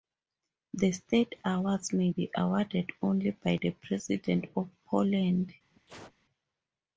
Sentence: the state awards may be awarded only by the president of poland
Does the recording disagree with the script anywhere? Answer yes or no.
no